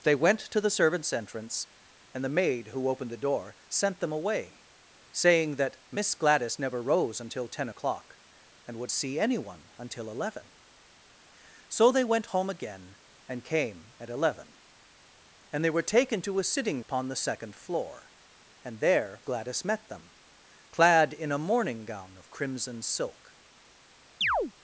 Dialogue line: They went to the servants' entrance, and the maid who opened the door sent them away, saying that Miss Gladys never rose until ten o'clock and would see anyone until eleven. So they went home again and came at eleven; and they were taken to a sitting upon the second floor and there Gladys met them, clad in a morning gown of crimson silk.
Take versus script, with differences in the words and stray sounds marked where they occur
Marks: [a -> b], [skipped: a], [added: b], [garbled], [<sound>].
They went to the servants' entrance, and the maid who opened the door sent them away, saying that Miss Gladys never rose until ten o'clock and would see anyone until eleven. So they went home again and came at eleven; and they were taken to a sitting upon the second floor and there Gladys met them, clad in a morning gown of crimson silk. [chirp]